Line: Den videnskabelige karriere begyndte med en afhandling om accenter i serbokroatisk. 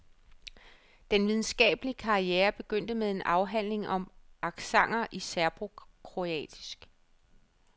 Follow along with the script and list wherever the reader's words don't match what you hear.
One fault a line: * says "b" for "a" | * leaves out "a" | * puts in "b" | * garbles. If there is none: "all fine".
all fine